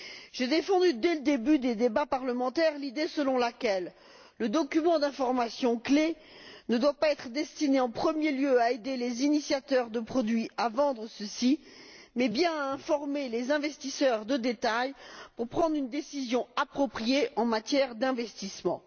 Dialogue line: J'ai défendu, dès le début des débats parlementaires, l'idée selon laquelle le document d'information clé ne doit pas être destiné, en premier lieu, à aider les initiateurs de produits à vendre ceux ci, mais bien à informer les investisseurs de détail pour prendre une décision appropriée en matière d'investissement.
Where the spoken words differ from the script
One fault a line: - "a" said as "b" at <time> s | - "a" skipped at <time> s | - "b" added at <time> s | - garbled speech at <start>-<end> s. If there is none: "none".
none